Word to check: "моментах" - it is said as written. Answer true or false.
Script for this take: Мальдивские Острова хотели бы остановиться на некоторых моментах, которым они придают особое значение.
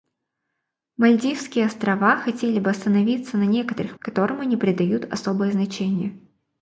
false